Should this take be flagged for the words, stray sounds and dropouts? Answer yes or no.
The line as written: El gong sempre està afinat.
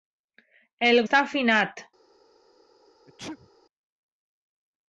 yes